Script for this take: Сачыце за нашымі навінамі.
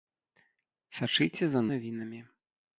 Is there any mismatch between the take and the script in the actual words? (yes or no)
yes